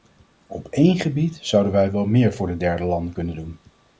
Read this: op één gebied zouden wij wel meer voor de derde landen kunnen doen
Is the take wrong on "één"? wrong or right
right